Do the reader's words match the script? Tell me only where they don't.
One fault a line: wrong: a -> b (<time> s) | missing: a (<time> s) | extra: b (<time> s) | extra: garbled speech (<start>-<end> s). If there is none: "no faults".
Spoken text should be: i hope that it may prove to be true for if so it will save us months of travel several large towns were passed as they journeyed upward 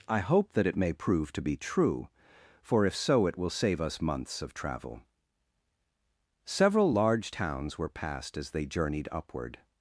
no faults